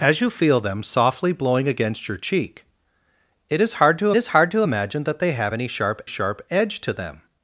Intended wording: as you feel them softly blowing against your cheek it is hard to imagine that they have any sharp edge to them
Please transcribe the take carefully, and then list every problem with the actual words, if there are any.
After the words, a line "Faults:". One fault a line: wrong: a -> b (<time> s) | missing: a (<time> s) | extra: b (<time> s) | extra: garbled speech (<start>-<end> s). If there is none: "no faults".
as you feel them softly blowing against your cheek it is hard to is hard to imagine that they have any sharp sharp edge to them
Faults:
extra: is hard to (4.2 s)
extra: sharp (6.1 s)